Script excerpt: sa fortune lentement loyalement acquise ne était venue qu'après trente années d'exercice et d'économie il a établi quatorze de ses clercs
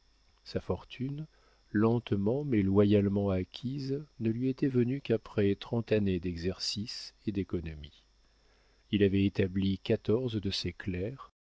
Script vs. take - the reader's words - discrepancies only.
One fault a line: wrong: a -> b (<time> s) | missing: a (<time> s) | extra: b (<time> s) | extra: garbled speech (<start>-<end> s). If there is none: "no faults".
extra: mais (2.4 s)
extra: lui (4.3 s)
wrong: a -> avait (9.0 s)